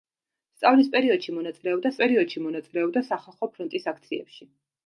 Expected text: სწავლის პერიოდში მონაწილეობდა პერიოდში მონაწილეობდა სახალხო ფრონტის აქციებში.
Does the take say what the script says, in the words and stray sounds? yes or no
yes